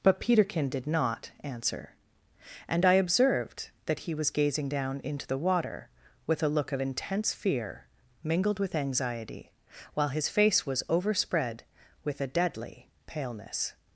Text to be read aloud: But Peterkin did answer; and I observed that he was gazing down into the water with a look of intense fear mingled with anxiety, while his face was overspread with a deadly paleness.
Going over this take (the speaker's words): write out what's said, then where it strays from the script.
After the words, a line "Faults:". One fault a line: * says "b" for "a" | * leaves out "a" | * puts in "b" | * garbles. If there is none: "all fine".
But Peterkin did not answer; and I observed that he was gazing down into the water with a look of intense fear mingled with anxiety, while his face was overspread with a deadly paleness.
Faults:
* puts in "not"